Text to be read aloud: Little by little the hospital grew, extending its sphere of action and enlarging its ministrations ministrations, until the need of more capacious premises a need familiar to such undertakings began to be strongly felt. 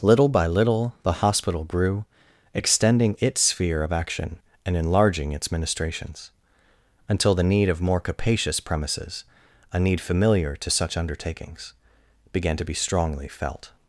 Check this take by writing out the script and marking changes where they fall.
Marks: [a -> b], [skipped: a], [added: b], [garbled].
Little by little the hospital grew, extending its sphere of action and enlarging its ministrations [skipped: ministrations,] until the need of more capacious premises a need familiar to such undertakings began to be strongly felt.